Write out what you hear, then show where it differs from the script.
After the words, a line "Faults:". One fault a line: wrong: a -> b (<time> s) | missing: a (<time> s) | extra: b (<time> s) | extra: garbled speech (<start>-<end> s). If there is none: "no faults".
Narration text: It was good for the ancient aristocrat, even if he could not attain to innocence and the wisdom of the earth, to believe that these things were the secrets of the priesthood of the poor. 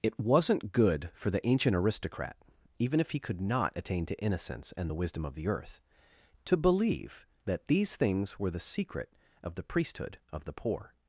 It wasn't good for the ancient aristocrat, even if he could not attain to innocence and the wisdom of the earth, to believe that these things were the secret of the priesthood of the poor.
Faults:
wrong: was -> wasn't (0.2 s)
wrong: secrets -> secret (8.6 s)